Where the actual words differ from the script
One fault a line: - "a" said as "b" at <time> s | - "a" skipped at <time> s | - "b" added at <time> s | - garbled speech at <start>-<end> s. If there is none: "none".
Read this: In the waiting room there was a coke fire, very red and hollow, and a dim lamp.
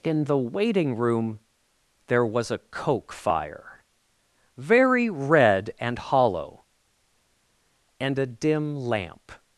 none